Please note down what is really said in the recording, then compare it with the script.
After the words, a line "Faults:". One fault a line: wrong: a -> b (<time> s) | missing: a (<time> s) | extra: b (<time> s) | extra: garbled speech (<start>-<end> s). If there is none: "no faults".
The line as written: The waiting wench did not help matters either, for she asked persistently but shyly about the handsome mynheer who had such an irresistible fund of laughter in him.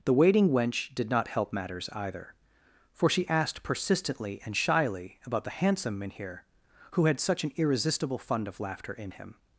The waiting wench did not help matters either, for she asked persistently and shyly about the handsome mynheer who had such an irresistible fund of laughter in him.
Faults:
wrong: but -> and (4.5 s)